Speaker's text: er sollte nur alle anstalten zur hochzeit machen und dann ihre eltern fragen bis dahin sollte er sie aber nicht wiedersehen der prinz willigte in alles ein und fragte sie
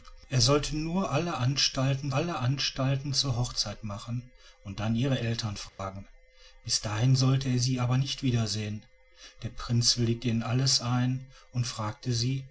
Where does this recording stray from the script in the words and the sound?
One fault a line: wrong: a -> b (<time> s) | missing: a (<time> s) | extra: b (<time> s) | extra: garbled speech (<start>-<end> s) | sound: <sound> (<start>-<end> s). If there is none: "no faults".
extra: alle anstalten (2.1 s)
sound: dropout (5.7-5.8 s)